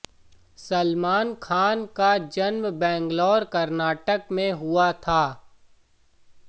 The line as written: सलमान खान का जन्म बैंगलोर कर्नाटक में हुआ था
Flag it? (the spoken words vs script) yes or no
no